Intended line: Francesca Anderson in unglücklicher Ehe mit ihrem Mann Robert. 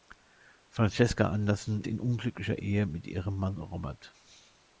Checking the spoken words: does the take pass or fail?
pass